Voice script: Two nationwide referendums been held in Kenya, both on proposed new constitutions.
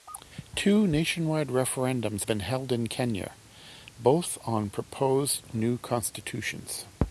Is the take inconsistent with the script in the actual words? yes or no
no